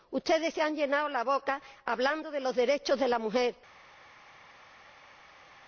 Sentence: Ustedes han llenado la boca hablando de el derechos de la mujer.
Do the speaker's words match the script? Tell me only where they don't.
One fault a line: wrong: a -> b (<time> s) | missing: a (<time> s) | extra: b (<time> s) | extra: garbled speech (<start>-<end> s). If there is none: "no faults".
extra: se (0.5 s)
wrong: el -> los (2.4 s)